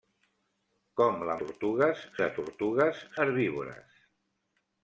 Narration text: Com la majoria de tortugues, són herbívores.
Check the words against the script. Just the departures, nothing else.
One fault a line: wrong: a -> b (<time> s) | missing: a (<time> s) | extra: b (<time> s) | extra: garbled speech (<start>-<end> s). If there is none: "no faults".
wrong: majoria -> tortugues (1.4 s)
missing: són (3.0 s)